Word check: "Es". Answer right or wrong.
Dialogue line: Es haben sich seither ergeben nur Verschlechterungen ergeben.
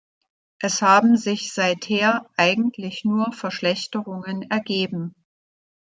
right